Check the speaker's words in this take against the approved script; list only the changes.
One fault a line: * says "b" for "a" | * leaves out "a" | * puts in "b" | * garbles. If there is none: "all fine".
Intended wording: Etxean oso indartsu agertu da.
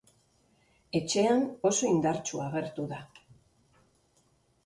all fine